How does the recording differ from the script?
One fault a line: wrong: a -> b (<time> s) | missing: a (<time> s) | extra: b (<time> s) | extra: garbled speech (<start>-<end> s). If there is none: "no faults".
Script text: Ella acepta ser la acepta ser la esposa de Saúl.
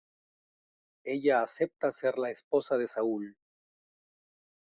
missing: acepta ser la (2.3 s)